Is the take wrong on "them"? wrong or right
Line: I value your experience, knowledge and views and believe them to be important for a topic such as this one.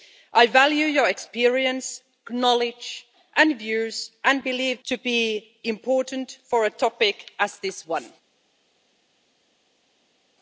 wrong